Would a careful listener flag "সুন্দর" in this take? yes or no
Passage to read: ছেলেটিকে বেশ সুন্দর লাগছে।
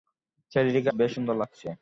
no